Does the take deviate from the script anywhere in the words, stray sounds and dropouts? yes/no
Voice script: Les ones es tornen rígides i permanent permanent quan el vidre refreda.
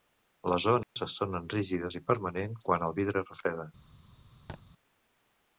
yes